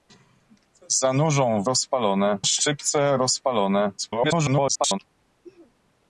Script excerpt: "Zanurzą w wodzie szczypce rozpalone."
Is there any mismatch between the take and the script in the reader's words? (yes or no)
yes